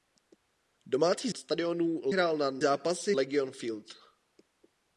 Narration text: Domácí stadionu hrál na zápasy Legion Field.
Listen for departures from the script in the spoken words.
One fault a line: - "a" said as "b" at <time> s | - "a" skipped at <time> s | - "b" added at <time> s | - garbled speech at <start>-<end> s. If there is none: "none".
none